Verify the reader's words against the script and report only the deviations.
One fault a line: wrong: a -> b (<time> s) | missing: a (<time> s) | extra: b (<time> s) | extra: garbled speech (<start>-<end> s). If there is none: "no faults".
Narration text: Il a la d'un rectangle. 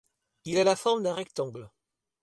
extra: forme (0.8 s)